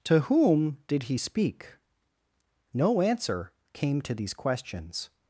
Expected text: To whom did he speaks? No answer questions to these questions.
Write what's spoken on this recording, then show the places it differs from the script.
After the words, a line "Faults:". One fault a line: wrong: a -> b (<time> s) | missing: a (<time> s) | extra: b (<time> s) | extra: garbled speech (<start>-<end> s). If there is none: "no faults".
To whom did he speak? No answer came to these questions.
Faults:
wrong: speaks -> speak (1.2 s)
wrong: questions -> came (3.7 s)